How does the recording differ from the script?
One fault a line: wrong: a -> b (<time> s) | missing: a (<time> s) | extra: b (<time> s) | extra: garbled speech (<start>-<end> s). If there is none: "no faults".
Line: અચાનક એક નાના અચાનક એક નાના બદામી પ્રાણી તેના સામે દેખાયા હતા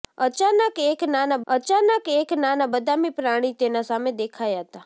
no faults